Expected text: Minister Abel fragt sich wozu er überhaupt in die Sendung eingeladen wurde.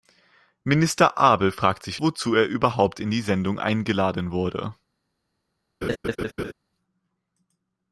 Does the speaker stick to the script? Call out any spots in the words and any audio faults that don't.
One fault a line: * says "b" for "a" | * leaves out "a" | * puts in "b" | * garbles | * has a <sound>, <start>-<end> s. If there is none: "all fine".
* has a laugh, 5.8-6.5 s